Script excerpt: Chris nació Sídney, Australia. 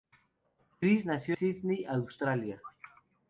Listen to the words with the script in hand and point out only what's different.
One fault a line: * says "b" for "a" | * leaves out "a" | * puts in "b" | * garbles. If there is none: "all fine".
all fine